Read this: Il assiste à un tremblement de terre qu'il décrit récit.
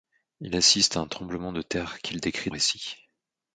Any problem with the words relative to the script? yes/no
no